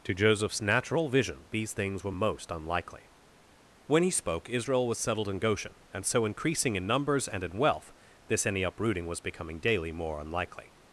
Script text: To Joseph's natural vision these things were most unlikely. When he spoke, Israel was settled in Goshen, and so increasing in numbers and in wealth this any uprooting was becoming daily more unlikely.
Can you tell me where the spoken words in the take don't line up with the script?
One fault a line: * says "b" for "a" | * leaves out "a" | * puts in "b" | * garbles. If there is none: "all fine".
all fine